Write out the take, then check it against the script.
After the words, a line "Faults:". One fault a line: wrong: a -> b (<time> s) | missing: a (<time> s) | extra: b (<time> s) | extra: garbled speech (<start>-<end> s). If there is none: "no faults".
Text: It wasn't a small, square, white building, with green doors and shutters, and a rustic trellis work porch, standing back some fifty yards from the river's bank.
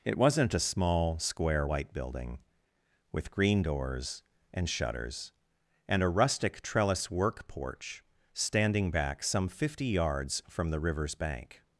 It wasn't a small, square, white building, with green doors and shutters, and a rustic trellis work porch, standing back some fifty yards from the river's bank.
Faults:
no faults